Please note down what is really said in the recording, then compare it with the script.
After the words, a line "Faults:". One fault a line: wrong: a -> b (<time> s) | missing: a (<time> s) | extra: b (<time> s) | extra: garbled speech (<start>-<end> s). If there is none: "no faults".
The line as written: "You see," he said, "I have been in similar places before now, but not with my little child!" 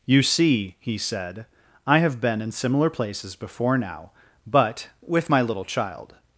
"You see," he said, "I have been in similar places before now, but with my little child!"
Faults:
missing: not (4.9 s)